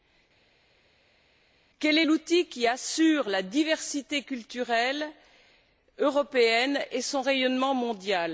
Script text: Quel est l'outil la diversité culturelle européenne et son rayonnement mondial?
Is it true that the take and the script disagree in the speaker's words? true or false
true